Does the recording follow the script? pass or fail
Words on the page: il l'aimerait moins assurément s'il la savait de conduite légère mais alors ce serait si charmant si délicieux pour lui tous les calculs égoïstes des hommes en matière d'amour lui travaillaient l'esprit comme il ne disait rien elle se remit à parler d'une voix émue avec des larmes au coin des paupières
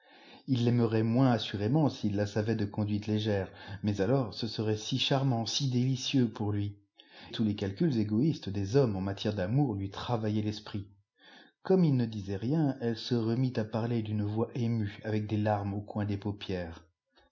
pass